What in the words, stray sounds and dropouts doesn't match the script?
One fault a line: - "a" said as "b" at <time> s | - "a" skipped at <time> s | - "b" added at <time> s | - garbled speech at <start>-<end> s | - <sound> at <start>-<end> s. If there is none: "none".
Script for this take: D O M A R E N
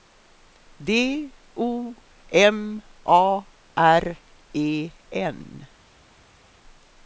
none